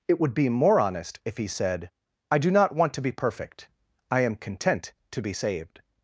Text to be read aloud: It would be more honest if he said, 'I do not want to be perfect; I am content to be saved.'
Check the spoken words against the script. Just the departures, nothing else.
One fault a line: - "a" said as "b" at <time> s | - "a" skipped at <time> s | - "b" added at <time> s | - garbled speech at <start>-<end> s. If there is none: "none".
none